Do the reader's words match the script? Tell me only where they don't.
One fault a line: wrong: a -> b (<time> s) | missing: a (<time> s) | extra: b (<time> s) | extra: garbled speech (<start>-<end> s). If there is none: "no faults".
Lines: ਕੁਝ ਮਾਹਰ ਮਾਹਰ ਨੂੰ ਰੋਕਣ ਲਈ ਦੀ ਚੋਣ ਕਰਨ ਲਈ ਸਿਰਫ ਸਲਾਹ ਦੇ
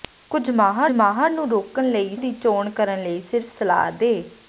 no faults